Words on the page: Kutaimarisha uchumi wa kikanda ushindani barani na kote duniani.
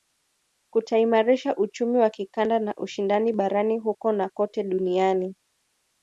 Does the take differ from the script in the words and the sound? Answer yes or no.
yes